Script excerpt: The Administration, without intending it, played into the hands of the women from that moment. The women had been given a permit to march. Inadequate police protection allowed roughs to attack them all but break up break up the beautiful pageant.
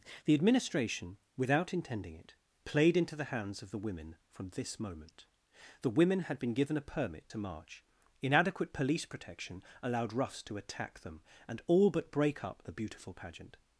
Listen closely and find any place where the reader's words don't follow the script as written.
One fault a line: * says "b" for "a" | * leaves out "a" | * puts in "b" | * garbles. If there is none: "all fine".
* says "this" for "that"
* puts in "and"
* leaves out "break up"